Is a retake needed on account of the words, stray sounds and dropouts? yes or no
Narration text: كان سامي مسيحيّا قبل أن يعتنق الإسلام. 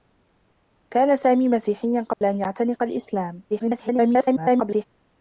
yes